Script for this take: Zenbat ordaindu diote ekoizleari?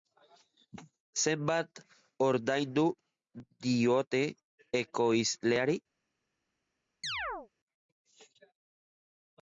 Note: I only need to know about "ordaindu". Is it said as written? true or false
true